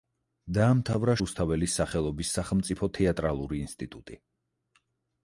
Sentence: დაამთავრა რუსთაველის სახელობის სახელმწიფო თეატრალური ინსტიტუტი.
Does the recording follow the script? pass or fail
pass